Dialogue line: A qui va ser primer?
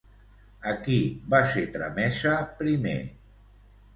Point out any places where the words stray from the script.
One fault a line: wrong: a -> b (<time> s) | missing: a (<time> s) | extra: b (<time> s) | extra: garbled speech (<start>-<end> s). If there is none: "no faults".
extra: tramesa (1.8 s)